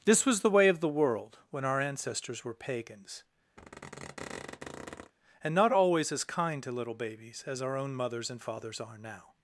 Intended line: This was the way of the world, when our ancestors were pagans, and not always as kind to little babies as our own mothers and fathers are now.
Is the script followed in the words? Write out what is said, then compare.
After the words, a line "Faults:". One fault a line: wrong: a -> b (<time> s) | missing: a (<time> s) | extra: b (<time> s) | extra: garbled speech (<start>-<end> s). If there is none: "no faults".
This was the way of the world, when our ancestors were pagans, and not always as kind to little babies as our own mothers and fathers are now.
Faults:
no faults